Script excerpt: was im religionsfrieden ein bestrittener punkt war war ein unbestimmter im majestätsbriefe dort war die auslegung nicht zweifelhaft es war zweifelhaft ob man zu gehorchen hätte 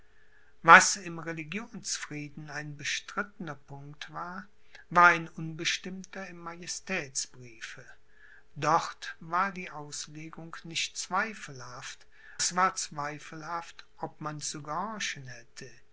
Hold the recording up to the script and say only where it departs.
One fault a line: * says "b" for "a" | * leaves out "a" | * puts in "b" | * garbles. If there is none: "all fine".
all fine